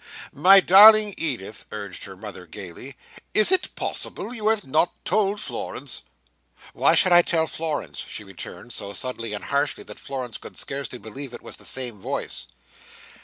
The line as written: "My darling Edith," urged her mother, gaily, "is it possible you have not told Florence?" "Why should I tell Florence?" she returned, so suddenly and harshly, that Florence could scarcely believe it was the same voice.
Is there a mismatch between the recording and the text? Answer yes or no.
no